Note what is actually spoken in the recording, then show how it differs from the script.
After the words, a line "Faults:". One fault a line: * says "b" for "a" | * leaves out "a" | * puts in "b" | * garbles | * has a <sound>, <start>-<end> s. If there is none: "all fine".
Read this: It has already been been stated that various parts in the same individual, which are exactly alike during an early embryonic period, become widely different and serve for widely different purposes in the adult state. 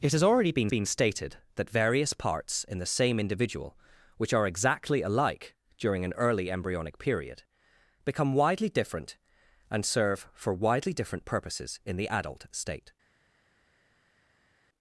It has already been been stated that various parts in the same individual, which are exactly alike during an early embryonic period, become widely different and serve for widely different purposes in the adult state.
Faults:
all fine